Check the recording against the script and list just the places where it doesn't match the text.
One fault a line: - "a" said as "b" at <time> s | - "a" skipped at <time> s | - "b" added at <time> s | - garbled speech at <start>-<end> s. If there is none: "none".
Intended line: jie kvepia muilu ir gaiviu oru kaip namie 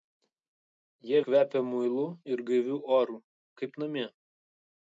none